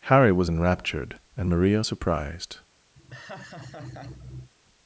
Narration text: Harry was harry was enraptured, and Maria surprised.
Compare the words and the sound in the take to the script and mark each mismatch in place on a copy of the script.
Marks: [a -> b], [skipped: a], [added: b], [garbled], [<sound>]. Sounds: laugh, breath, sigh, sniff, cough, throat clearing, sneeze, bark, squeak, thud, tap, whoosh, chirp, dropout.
Harry was [skipped: harry was] enraptured, and Maria surprised. [laugh]